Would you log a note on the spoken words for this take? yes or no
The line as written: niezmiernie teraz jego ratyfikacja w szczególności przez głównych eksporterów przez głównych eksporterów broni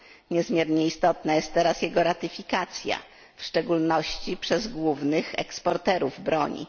yes